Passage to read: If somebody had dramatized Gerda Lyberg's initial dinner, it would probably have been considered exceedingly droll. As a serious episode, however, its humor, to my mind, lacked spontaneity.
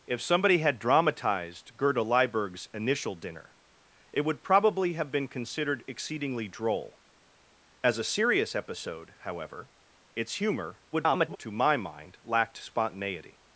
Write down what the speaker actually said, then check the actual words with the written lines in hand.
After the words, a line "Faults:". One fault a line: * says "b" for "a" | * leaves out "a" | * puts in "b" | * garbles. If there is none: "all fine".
If somebody had dramatized Gerda Lyberg's initial dinner, it would probably have been considered exceedingly droll. As a serious episode, however, its humor, [garbled] to my mind, lacked spontaneity.
Faults:
* garbles